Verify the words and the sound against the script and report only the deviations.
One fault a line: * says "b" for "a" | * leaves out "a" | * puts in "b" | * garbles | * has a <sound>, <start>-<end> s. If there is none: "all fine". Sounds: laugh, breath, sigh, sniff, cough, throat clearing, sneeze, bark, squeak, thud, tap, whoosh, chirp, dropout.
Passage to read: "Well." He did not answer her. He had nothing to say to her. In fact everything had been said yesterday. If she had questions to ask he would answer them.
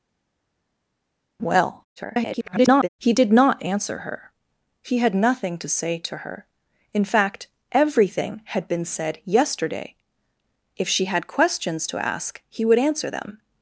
* garbles